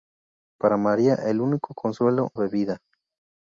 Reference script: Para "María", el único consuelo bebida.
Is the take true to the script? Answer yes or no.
yes